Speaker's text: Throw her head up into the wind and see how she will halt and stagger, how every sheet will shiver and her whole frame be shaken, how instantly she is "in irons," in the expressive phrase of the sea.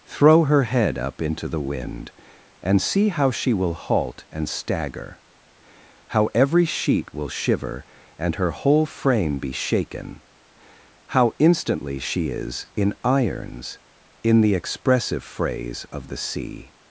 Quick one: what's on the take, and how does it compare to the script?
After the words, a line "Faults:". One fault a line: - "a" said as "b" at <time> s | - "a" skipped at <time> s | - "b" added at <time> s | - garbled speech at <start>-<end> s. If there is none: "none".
Throw her head up into the wind and see how she will halt and stagger, how every sheet will shiver and her whole frame be shaken, how instantly she is "in irons," in the expressive phrase of the sea.
Faults:
none